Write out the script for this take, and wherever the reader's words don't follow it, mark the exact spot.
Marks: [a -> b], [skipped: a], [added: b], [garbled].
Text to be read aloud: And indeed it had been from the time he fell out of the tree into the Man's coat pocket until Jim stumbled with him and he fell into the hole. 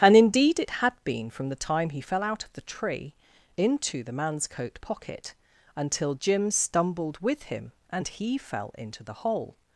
And indeed it had been from the time he fell out of the tree into the Man's coat pocket until Jim stumbled with him and he fell into the hole.